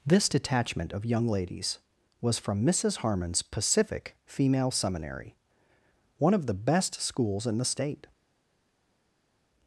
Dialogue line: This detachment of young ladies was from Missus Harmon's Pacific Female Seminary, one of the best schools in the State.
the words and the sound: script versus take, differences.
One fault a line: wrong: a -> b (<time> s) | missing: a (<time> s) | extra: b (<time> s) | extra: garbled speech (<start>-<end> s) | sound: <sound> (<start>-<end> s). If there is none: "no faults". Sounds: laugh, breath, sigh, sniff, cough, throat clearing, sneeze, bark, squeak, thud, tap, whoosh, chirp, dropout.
no faults